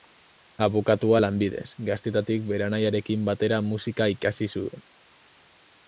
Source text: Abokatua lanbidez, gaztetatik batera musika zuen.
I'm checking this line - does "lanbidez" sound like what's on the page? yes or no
yes